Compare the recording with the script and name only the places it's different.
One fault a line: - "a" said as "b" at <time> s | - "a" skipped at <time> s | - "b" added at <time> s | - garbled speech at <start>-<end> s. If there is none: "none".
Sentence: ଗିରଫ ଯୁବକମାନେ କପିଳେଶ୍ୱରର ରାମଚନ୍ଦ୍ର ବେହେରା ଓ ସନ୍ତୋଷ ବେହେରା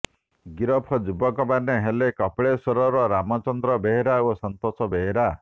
- "ହେଲେ" added at 1.8 s